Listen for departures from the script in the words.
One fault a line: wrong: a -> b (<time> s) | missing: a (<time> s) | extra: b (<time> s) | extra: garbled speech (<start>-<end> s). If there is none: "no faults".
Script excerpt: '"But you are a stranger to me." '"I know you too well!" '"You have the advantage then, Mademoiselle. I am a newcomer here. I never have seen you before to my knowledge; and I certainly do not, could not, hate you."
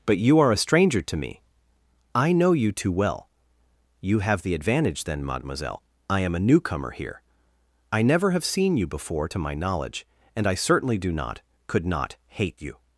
no faults